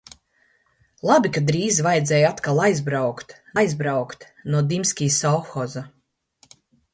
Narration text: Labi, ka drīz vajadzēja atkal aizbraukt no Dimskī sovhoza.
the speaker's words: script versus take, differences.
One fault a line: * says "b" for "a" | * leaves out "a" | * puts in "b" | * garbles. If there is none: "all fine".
* puts in "aizbraukt"